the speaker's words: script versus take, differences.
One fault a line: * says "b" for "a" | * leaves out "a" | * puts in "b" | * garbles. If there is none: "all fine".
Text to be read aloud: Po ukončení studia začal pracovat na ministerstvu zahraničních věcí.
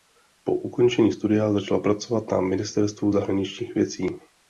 all fine